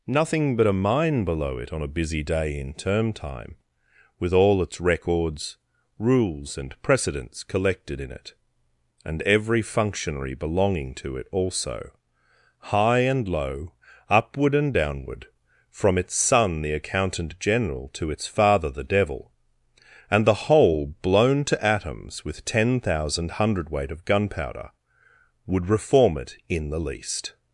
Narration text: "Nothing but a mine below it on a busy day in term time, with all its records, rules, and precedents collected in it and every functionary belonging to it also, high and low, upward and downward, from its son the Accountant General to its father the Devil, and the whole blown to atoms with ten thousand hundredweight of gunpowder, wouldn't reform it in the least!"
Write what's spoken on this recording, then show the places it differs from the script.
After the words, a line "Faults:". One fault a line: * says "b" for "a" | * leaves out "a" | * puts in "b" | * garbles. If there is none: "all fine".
"Nothing but a mine below it on a busy day in term time, with all its records, rules, and precedents collected in it and every functionary belonging to it also, high and low, upward and downward, from its son the Accountant General to its father the Devil, and the whole blown to atoms with ten thousand hundredweight of gunpowder, would reform it in the least!"
Faults:
* says "would" for "wouldn't"